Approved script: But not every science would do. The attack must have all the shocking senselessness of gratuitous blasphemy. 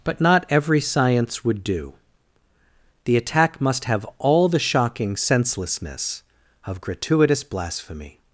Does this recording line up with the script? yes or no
yes